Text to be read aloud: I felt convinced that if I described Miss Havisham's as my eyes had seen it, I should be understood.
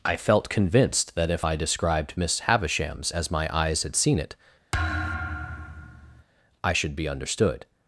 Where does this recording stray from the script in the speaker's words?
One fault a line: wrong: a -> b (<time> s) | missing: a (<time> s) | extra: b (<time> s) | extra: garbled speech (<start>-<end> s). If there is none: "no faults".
no faults